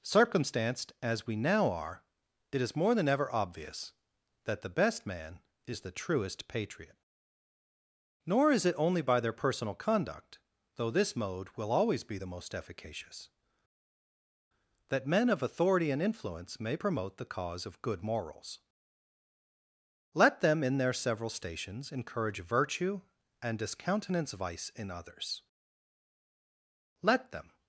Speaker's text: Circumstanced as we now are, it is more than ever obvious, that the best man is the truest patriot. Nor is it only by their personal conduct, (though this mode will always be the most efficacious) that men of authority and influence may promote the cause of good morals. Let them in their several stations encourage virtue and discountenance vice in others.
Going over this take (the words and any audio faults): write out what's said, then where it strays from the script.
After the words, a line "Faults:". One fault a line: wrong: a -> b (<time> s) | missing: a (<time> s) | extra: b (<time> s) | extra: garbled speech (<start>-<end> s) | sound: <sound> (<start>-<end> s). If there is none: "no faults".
Circumstanced as we now are, it is more than ever obvious, that the best man is the truest patriot. Nor is it only by their personal conduct, (though this mode will always be the most efficacious) that men of authority and influence may promote the cause of good morals. Let them in their several stations encourage virtue and discountenance vice in others. Let them
Faults:
extra: Let them (27.0 s)